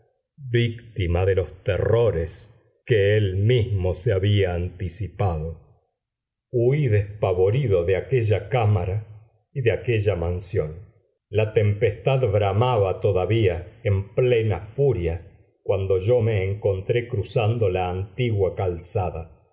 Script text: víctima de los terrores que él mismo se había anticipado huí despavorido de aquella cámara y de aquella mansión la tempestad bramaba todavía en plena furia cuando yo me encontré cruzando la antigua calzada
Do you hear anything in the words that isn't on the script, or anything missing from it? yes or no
no